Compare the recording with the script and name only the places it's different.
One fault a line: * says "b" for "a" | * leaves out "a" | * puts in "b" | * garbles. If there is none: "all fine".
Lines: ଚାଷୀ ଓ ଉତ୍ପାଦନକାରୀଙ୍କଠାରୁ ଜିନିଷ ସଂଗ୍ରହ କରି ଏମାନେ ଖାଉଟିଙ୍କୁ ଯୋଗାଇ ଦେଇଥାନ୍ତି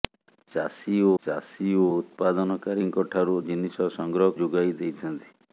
* puts in "ଚାଷୀ ଓ"
* leaves out "କରି ଏମାନେ ଖାଉଟିଙ୍କୁ"